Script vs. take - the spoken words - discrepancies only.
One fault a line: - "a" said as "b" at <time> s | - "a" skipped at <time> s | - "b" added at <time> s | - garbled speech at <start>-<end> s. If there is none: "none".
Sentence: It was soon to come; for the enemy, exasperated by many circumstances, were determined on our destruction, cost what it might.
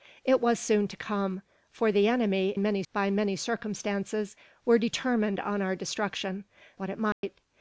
- "exasperated" said as "many" at 2.6 s
- "cost" skipped at 6.4 s